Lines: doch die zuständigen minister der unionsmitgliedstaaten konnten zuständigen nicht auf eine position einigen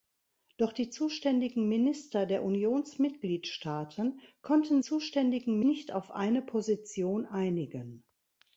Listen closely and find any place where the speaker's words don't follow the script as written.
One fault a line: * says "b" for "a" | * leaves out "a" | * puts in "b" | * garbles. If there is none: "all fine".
all fine